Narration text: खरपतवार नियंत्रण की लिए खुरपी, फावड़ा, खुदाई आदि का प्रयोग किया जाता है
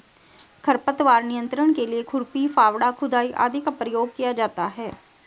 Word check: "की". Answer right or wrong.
wrong